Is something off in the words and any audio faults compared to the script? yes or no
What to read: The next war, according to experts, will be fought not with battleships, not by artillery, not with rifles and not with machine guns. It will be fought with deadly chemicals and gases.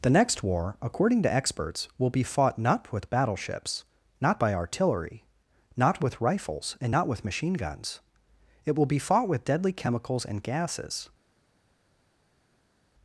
no